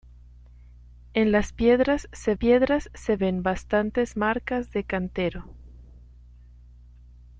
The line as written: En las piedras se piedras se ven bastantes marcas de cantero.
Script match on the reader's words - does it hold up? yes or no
yes